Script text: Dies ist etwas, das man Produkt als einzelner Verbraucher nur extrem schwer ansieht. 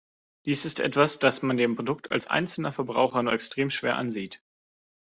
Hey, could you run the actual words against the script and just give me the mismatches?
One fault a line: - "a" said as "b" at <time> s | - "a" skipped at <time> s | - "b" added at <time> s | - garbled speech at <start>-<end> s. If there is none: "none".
- "dem" added at 1.6 s